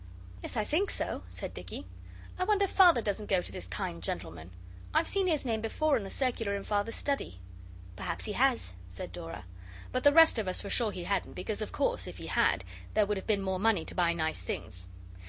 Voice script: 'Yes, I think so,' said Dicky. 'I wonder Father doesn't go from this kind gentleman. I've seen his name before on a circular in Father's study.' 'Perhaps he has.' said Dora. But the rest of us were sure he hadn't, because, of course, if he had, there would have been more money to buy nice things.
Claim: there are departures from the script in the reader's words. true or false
true